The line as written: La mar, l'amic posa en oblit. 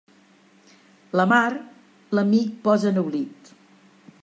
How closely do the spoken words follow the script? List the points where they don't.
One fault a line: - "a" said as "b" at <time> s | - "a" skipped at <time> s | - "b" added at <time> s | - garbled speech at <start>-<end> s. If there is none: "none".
none